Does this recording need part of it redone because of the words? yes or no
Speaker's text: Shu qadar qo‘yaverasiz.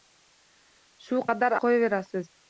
no